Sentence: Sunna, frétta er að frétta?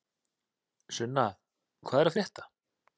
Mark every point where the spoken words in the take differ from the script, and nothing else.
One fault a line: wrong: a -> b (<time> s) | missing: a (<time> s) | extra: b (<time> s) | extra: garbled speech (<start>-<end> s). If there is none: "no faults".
wrong: frétta -> hvað (1.9 s)